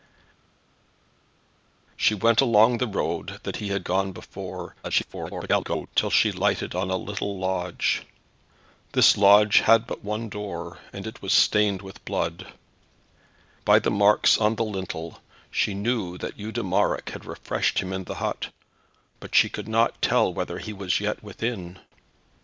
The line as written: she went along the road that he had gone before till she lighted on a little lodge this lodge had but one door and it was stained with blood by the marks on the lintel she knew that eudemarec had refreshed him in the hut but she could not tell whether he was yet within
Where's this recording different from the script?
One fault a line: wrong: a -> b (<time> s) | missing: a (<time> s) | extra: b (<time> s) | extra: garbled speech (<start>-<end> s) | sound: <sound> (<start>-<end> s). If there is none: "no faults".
extra: garbled speech (4.8-5.9 s)